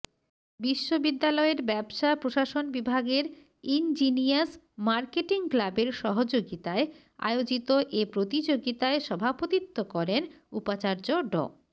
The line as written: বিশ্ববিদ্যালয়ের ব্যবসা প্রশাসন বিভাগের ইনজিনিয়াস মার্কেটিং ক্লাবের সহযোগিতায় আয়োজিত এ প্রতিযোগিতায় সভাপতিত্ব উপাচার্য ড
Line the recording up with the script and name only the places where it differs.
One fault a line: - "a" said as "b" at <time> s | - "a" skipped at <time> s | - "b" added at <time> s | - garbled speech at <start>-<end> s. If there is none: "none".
- "করেন" added at 9.9 s